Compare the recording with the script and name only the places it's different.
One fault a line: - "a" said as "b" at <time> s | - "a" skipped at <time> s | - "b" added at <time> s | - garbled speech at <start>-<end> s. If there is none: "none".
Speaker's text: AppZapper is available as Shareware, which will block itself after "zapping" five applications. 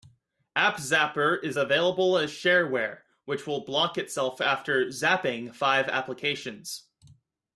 none